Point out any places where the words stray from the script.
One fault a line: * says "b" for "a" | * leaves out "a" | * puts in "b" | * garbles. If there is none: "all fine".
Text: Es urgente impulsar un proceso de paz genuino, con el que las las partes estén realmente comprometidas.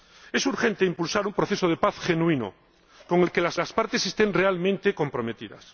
all fine